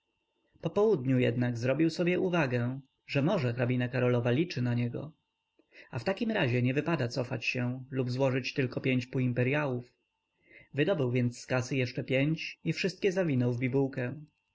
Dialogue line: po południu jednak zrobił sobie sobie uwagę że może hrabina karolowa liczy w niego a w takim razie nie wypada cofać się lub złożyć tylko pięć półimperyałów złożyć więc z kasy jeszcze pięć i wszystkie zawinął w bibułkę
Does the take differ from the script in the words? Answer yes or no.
yes